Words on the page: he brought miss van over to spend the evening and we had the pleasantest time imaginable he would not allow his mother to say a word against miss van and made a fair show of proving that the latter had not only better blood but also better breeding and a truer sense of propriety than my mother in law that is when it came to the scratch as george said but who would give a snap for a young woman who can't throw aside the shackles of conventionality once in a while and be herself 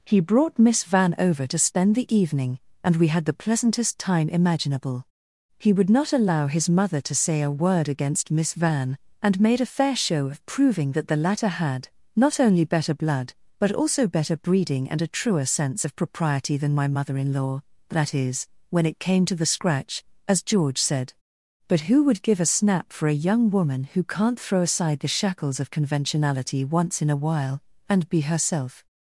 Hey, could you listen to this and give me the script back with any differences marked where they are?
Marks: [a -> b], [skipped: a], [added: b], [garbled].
he brought miss van over to spend the evening and we had the pleasantest time imaginable he would not allow his mother to say a word against miss van and made a fair show of proving that the latter had not only better blood but also better breeding and a truer sense of propriety than my mother in law that is when it came to the scratch as george said but who would give a snap for a young woman who can't throw aside the shackles of conventionality once in a while and be herself